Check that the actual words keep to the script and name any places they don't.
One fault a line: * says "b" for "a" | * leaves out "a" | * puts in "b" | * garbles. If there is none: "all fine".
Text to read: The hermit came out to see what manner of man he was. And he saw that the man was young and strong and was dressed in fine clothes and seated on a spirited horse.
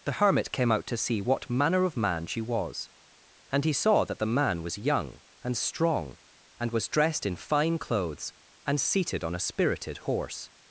* says "she" for "he"